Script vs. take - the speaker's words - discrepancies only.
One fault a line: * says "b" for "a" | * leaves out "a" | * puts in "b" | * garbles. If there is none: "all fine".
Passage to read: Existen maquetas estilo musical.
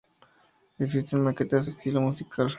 all fine